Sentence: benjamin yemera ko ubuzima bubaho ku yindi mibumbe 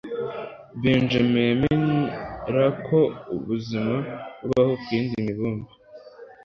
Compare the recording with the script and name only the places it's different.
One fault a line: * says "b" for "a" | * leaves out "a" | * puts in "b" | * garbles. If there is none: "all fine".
all fine